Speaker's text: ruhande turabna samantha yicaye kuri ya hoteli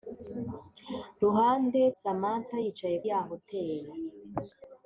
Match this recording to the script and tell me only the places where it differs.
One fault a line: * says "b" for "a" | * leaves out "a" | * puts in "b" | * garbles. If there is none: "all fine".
* leaves out "turabna"
* leaves out "kuri"